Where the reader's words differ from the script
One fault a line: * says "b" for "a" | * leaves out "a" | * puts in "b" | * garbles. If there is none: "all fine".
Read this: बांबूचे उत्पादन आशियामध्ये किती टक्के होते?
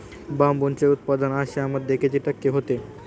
all fine